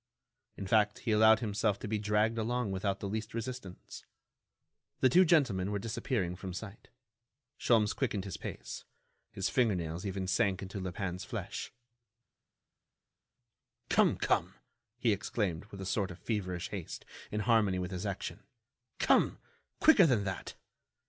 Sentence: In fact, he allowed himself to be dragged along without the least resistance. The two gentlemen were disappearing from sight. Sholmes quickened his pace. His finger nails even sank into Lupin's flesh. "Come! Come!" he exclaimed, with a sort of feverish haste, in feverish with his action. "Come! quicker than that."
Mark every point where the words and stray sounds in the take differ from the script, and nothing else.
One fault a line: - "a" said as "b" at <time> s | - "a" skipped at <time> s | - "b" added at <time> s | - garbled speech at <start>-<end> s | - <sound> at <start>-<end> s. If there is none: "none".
- "feverish" said as "harmony" at 17.4 s